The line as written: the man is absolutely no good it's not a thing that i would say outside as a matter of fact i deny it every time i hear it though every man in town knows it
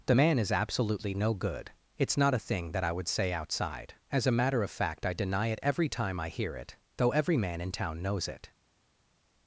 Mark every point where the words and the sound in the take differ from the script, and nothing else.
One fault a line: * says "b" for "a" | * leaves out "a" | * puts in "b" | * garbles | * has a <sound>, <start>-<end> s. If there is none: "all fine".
all fine